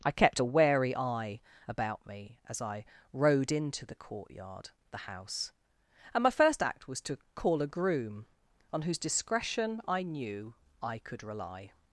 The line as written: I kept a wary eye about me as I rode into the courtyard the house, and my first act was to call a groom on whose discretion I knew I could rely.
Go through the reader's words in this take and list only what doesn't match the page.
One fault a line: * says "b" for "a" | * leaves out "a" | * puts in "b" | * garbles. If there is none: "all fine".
all fine